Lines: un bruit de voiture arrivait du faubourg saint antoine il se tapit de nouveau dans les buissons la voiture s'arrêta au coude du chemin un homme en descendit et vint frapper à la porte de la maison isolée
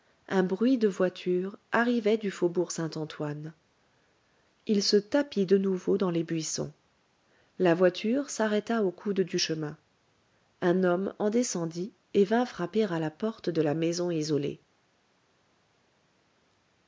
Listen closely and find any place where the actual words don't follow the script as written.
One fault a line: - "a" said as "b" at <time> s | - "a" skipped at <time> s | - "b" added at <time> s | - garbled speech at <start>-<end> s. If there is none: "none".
none